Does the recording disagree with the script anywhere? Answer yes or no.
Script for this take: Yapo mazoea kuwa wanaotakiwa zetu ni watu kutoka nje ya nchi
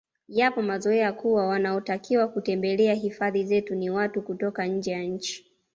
yes